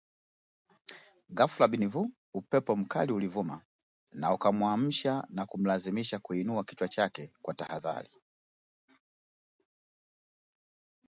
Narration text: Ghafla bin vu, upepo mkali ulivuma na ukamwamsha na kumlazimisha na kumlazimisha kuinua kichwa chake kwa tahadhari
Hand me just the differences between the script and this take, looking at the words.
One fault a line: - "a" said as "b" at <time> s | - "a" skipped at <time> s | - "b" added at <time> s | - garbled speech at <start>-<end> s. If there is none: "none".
- "na kumlazimisha" skipped at 6.2 s